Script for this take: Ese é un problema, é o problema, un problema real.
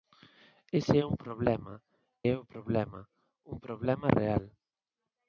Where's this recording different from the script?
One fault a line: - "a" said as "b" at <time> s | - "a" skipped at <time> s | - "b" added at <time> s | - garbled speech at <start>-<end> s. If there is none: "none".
none